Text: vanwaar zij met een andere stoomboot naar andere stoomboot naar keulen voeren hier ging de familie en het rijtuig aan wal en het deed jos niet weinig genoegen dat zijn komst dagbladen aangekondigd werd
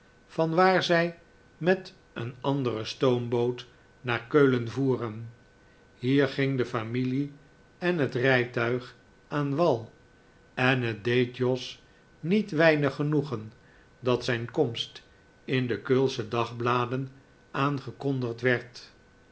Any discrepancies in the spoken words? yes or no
yes